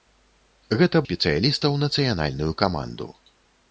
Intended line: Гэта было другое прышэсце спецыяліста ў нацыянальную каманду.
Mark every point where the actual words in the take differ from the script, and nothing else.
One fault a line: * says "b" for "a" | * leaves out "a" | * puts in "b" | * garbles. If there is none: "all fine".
* leaves out "было другое прышэсце"